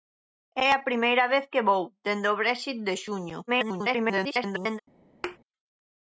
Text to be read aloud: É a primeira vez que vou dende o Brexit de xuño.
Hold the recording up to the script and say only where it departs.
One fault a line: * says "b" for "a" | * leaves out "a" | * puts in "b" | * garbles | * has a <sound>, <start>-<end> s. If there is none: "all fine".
* garbles
* has a thud, 5.2-5.4 s